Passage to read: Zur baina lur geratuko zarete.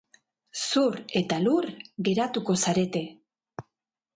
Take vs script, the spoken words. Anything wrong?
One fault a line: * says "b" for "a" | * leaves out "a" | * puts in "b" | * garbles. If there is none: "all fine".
* says "eta" for "baina"